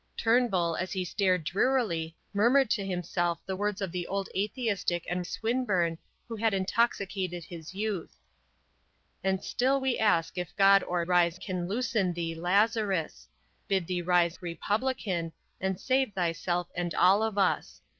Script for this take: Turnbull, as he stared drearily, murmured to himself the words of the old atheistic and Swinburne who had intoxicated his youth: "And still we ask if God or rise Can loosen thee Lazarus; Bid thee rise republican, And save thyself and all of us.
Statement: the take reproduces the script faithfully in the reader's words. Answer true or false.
true